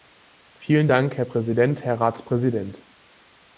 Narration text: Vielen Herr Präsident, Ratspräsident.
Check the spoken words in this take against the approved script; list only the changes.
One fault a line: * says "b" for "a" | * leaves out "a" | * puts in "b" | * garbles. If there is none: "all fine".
* puts in "Dank"
* puts in "Herr"